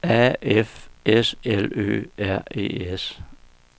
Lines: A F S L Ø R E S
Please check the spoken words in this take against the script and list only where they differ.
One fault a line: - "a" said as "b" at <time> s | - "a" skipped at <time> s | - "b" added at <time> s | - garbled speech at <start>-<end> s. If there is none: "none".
none